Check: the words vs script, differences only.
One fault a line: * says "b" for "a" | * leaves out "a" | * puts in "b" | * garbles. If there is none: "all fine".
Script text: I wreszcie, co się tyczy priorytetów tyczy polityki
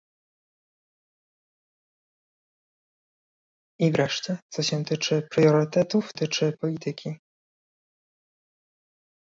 all fine